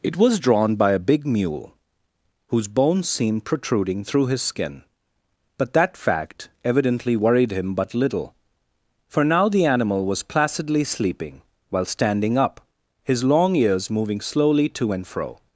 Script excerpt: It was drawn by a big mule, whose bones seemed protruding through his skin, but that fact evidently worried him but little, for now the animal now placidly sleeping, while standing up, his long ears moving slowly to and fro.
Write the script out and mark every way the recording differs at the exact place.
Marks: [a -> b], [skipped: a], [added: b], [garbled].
It was drawn by a big mule, whose bones seemed protruding through his skin, but that fact evidently worried him but little, for now the animal [now -> was] placidly sleeping, while standing up, his long ears moving slowly to and fro.